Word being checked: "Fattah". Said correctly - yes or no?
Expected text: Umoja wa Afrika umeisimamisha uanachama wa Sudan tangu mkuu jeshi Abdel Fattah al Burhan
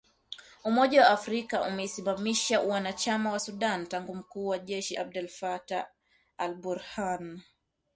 yes